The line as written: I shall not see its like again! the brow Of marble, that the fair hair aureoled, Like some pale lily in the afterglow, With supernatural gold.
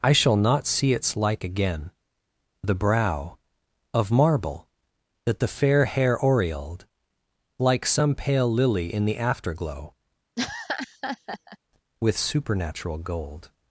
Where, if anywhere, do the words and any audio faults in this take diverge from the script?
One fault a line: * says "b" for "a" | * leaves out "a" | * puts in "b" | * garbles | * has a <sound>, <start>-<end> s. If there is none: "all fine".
* has a laugh, 10.4-11.6 s